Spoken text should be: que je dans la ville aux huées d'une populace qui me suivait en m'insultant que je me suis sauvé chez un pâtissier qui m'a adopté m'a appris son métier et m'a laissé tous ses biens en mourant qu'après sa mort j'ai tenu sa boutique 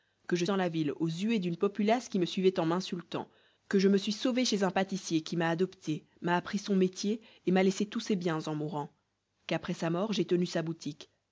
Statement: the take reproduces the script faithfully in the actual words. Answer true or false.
true